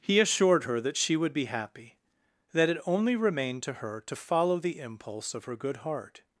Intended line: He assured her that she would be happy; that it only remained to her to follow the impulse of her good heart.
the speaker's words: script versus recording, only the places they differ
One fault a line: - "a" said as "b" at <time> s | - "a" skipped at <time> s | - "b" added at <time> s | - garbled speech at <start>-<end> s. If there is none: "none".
none